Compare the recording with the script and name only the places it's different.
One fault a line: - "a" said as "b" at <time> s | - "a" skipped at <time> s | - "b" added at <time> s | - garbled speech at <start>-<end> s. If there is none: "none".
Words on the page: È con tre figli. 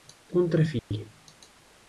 none